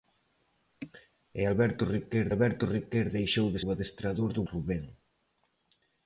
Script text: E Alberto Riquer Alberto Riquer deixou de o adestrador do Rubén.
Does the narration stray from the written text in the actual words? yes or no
no